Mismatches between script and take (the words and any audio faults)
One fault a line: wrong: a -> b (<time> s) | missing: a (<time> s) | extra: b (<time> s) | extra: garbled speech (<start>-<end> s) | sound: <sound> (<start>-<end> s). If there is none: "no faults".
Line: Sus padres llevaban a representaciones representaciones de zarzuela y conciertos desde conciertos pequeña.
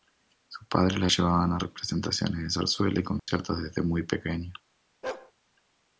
extra: la (1.0 s)
missing: representaciones (2.4 s)
sound: dropout (3.2-3.3 s)
wrong: conciertos -> muy (3.8 s)
sound: bark (5.0-5.3 s)